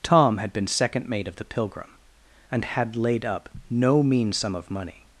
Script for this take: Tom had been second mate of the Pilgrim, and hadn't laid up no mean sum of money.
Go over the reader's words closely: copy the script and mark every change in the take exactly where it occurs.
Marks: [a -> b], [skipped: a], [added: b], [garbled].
Tom had been second mate of the Pilgrim, and [hadn't -> had] laid up no mean sum of money.